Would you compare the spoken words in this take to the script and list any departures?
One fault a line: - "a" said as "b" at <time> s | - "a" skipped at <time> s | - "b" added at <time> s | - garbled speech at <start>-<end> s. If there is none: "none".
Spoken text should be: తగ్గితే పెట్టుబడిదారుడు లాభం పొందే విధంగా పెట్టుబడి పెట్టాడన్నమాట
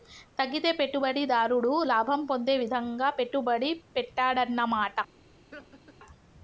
none